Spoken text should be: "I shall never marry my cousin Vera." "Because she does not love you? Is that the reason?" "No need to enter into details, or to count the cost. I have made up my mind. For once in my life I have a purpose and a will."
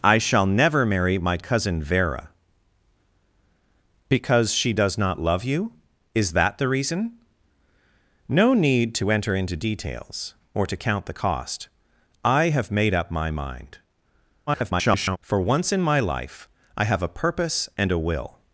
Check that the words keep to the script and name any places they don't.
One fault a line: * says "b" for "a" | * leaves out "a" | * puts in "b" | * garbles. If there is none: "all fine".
* garbles